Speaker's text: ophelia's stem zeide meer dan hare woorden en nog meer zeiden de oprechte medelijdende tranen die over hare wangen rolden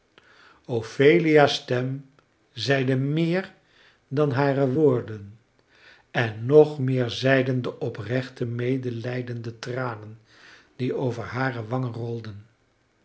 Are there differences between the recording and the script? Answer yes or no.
no